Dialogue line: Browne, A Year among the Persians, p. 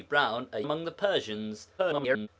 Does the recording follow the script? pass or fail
fail